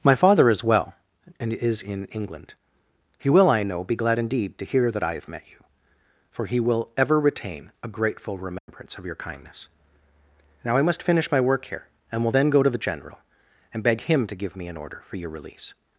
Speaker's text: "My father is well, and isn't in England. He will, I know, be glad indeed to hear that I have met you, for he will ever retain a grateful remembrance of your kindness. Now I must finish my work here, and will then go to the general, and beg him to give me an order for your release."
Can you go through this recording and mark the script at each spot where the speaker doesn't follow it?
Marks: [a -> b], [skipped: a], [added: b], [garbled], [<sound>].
"My father is well, and [isn't -> is] in England. He will, I know, be glad indeed to hear that I have met you, for he will ever retain a grateful remembrance [dropout] of your kindness. Now I must finish my work here, and will then go to the general, and beg him to give me an order for your release."